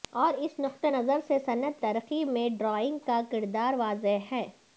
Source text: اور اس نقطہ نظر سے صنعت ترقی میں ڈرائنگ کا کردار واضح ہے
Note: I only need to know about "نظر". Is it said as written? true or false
true